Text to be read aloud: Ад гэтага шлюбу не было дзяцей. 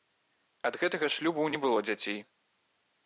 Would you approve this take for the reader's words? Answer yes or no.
yes